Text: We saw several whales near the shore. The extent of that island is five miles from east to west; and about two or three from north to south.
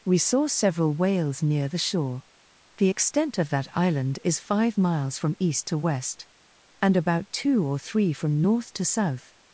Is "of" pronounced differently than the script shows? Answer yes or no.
no